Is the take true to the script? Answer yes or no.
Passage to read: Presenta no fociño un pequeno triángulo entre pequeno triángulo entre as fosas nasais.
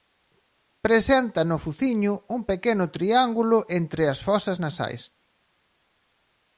no